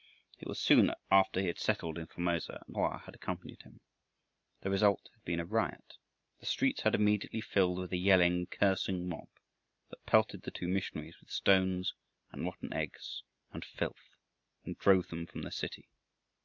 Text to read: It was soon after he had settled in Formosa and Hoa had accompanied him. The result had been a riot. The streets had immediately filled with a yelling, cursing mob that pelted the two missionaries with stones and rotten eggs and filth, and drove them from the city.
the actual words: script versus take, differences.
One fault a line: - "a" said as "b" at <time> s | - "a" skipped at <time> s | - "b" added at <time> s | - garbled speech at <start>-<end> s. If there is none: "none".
none